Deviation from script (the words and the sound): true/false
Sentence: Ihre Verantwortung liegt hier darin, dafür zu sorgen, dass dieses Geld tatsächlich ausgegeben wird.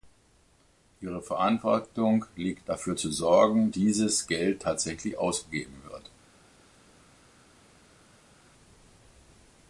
true